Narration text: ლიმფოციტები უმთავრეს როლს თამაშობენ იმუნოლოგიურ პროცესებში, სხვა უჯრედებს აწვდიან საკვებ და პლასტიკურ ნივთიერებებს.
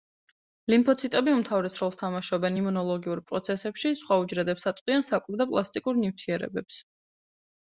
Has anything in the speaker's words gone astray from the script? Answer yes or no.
no